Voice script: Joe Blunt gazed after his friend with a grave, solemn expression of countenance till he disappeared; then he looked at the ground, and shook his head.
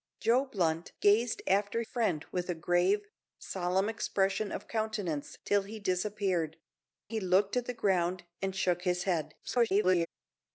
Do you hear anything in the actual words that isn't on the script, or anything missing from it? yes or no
yes